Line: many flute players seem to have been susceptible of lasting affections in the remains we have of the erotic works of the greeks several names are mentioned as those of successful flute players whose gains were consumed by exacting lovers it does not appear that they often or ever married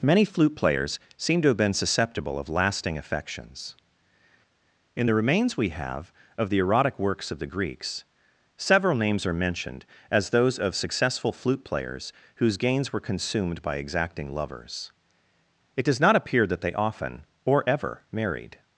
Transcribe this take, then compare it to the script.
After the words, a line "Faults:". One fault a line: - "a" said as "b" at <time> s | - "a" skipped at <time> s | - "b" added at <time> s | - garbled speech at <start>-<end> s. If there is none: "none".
many flute players seem to have been susceptible of lasting affections in the remains we have of the erotic works of the greeks several names are mentioned as those of successful flute players whose gains were consumed by exacting lovers it does not appear that they often or ever married
Faults:
none